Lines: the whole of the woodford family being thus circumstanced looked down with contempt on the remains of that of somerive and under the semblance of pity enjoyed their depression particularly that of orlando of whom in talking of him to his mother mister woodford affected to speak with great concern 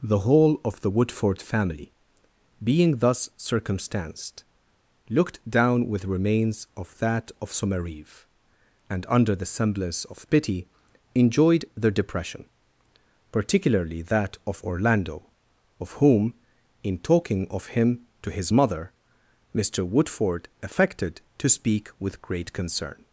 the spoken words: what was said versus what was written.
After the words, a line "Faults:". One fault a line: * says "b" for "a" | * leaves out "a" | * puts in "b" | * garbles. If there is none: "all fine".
the whole of the woodford family being thus circumstanced looked down with remains of that of somerive and under the semblance of pity enjoyed their depression particularly that of orlando of whom in talking of him to his mother mister woodford affected to speak with great concern
Faults:
* leaves out "contempt on the"